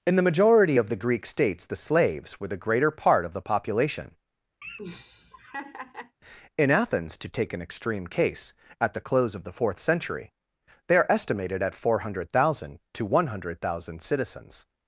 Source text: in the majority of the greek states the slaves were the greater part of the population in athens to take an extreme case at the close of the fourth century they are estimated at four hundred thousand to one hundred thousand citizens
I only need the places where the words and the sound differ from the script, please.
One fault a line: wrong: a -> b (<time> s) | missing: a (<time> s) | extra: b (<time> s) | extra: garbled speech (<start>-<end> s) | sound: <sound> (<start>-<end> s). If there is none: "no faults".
sound: laugh (4.6-6.2 s)